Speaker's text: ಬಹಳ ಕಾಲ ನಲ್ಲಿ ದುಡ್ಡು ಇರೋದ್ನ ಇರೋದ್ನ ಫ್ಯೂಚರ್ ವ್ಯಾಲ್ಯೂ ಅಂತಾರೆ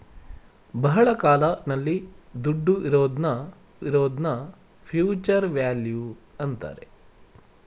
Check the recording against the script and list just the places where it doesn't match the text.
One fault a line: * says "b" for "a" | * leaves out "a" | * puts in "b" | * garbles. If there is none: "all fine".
all fine